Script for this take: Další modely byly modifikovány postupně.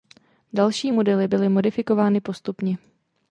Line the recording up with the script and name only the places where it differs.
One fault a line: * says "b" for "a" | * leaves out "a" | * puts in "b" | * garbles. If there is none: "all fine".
all fine